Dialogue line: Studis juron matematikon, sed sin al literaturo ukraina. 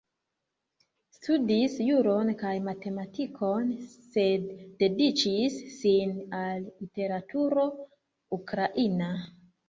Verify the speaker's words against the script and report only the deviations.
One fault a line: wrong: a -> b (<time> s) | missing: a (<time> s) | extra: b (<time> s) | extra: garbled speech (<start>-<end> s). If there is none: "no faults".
extra: kaj (2.4 s)
extra: dediĉis (4.8 s)